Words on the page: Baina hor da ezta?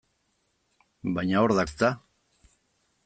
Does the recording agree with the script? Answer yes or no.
yes